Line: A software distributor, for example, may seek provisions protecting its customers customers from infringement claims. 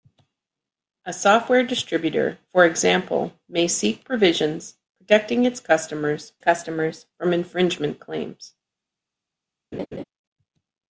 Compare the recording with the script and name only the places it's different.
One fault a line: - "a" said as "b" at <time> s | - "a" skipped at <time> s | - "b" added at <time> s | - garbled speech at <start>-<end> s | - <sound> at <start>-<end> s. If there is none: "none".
- laugh at 9.7-10.0 s